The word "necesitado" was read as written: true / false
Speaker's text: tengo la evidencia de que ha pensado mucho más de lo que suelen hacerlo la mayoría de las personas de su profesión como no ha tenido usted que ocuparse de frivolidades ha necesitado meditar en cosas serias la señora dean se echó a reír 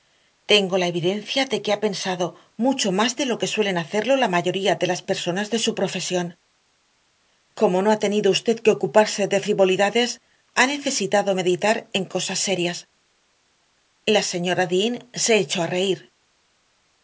true